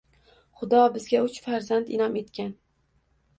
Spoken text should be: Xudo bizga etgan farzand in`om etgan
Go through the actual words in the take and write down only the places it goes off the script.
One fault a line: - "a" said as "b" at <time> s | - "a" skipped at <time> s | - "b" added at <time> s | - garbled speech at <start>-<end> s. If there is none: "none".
- "etgan" said as "uch" at 1.2 s